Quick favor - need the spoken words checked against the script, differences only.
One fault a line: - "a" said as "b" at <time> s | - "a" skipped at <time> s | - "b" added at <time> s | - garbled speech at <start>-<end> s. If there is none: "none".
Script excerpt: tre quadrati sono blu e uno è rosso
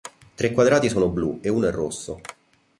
none